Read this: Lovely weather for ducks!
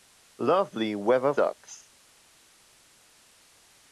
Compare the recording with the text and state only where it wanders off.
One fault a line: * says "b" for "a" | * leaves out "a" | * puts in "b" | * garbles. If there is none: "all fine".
* leaves out "for"